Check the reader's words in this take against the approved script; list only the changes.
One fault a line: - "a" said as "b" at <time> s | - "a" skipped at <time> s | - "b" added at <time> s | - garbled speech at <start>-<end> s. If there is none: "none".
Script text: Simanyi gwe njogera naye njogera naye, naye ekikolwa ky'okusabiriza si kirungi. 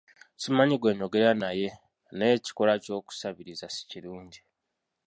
- "njogera naye" skipped at 1.7 s